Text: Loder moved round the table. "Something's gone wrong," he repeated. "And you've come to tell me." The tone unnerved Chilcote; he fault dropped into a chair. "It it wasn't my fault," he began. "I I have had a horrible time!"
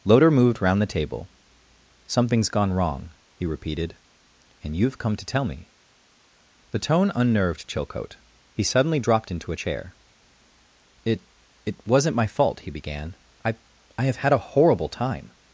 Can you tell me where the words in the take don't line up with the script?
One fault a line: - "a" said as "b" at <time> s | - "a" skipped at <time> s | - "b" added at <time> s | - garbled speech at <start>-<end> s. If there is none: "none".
- "fault" said as "suddenly" at 8.6 s